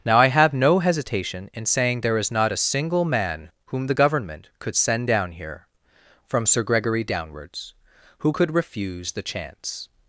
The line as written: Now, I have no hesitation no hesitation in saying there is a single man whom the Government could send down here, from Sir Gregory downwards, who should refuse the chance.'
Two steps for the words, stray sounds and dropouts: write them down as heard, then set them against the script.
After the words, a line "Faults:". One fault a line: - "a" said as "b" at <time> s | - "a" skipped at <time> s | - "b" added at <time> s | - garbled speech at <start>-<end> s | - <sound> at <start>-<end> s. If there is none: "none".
Now, I have no hesitation in saying there is not a single man whom the Government could send down here, from Sir Gregory downwards, who could refuse the chance.'
Faults:
- "no hesitation" skipped at 1.5 s
- "not" added at 2.3 s
- "should" said as "could" at 8.3 s